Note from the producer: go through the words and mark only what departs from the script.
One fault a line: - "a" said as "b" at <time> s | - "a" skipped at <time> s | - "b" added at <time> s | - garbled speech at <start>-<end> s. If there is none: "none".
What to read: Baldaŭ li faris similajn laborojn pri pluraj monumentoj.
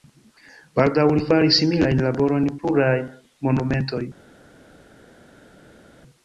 - "pri" skipped at 2.5 s